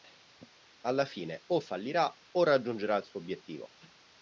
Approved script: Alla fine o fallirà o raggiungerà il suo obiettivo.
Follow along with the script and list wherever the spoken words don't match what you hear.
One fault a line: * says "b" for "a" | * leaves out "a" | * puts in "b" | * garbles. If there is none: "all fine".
all fine